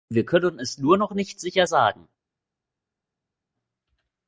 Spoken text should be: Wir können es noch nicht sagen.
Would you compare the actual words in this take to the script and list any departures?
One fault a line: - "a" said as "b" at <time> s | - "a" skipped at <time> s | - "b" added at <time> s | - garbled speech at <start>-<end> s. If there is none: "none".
- "nur" added at 0.8 s
- "sicher" added at 1.4 s